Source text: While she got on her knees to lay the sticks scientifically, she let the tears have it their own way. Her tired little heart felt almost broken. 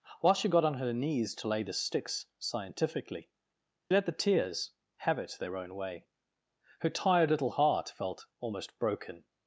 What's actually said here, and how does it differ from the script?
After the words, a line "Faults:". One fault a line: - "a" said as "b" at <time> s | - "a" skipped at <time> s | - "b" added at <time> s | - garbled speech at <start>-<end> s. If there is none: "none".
While she got on her knees to lay the sticks scientifically, let the tears have it their own way. Her tired little heart felt almost broken.
Faults:
- "she" skipped at 3.3 s